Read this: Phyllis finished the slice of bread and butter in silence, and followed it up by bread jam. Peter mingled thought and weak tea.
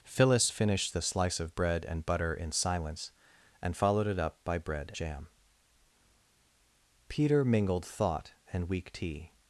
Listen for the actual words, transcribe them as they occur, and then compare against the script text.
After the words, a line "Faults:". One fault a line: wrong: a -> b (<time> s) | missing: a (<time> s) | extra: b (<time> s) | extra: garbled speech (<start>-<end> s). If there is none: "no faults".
Phyllis finished the slice of bread and butter in silence, and followed it up by bread jam. Peter mingled thought and weak tea.
Faults:
no faults